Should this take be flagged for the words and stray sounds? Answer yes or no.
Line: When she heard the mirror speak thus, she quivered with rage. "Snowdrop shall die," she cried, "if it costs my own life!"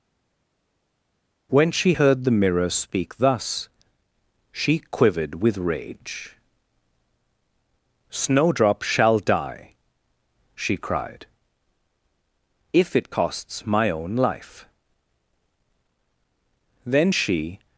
yes